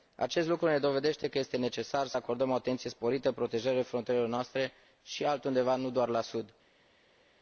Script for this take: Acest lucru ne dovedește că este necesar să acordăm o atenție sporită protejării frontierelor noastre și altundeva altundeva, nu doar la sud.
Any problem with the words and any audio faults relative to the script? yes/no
yes